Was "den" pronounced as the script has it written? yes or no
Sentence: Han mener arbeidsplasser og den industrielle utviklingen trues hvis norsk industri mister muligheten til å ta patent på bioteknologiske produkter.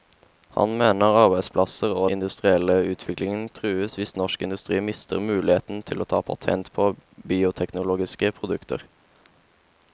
no